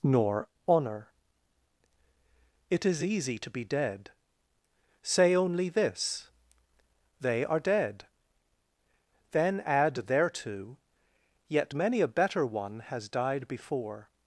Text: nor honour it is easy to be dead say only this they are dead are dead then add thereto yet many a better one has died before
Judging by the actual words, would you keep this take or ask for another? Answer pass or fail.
fail